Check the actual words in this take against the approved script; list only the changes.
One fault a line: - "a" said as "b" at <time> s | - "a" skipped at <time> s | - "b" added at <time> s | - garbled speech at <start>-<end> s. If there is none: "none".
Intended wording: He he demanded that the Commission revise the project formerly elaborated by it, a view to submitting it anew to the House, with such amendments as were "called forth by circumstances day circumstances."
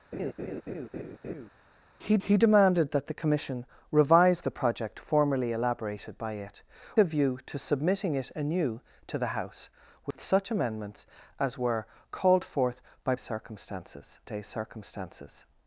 none